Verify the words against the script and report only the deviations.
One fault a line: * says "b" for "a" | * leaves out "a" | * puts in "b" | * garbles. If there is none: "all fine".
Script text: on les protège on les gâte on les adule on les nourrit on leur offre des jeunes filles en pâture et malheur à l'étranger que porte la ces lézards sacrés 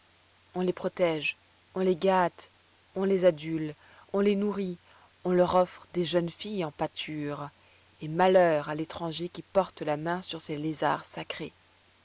* says "qui" for "que"
* puts in "main sur"